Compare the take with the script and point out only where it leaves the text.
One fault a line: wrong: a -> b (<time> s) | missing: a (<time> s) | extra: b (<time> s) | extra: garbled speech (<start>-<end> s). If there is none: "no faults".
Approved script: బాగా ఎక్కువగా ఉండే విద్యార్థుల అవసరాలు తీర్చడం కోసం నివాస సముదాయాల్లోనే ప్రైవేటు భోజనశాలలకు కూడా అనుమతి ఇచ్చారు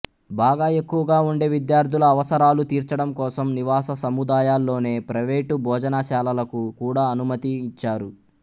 no faults